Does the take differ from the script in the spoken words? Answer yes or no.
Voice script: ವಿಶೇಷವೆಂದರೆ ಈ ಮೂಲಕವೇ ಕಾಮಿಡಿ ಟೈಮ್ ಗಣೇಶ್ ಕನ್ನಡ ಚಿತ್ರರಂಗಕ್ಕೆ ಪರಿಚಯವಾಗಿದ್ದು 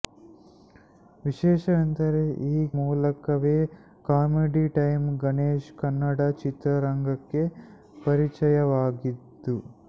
no